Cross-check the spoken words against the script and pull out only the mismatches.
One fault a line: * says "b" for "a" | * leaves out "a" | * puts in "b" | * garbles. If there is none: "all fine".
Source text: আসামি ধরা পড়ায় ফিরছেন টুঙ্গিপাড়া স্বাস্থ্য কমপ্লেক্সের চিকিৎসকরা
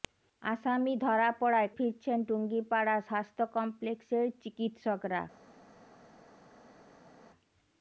all fine